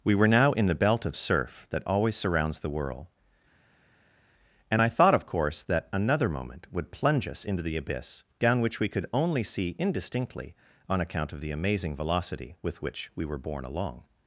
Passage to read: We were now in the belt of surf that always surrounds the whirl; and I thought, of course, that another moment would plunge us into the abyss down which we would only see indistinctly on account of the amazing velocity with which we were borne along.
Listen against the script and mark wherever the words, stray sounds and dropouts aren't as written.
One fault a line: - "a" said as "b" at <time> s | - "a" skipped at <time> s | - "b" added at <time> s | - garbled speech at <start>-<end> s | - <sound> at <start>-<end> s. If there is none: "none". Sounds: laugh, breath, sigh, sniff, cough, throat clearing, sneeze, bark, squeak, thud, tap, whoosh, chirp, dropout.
- "would" said as "could" at 8.9 s